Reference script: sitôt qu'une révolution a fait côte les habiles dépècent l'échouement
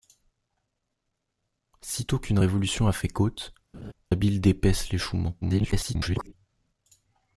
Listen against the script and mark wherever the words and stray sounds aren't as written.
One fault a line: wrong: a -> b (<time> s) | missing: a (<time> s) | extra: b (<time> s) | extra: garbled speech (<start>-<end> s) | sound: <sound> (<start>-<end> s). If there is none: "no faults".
missing: les (3.5 s)
sound: laugh (3.7-3.9 s)
extra: garbled speech (5.4-6.3 s)